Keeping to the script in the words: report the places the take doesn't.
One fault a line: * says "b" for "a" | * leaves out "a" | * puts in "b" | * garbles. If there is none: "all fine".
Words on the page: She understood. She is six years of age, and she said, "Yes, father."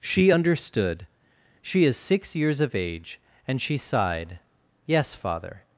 * says "sighed" for "said"